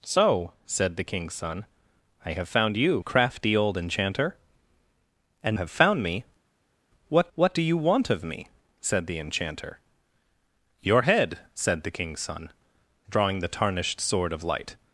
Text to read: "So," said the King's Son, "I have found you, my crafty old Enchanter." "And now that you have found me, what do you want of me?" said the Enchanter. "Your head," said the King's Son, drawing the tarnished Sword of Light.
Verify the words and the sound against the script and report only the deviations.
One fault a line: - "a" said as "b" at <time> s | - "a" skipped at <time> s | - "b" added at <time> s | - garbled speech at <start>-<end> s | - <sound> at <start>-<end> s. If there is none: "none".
- "my" skipped at 3.0 s
- "now that you" skipped at 5.6 s
- "what" added at 7.3 s